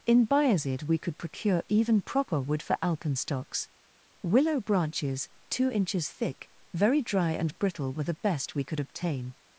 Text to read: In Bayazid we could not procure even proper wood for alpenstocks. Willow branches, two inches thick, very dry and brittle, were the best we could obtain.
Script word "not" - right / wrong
wrong